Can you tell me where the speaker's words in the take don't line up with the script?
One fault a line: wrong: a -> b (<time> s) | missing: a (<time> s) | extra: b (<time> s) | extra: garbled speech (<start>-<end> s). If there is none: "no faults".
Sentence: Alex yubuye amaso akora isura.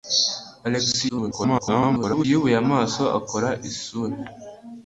extra: garbled speech (1.1-2.2 s)